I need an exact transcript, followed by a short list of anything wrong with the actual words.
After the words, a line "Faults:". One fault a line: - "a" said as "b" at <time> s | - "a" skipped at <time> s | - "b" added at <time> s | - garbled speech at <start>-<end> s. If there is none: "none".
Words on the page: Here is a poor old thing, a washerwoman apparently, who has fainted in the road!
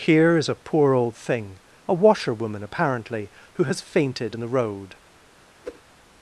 Here is a poor old thing, a washerwoman apparently, who has fainted in the road!
Faults:
none